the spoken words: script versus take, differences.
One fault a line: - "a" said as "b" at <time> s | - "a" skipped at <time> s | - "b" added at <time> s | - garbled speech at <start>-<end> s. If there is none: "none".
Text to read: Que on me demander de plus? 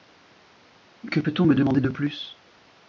- "peut" added at 1.2 s